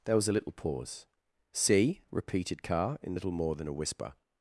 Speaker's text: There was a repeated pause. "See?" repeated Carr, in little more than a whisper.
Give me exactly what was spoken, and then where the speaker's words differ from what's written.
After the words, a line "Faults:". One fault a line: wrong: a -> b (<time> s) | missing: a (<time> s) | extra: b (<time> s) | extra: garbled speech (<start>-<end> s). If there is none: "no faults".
There was a little pause. "See?" repeated Carr, in little more than a whisper.
Faults:
wrong: repeated -> little (0.3 s)